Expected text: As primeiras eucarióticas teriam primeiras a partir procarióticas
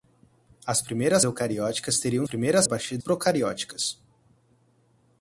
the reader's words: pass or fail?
pass